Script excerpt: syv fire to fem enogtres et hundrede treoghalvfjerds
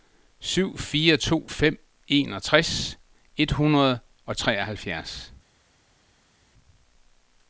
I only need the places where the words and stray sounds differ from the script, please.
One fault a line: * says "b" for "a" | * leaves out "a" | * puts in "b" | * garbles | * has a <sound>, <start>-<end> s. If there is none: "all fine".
* puts in "og"